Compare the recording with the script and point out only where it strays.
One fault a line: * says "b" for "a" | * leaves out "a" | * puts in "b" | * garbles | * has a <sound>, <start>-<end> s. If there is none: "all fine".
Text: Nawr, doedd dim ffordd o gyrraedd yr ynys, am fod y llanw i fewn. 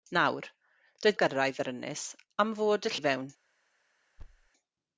* leaves out "dim ffordd"
* leaves out "llanw"
* has a thud, 4.2-4.5 s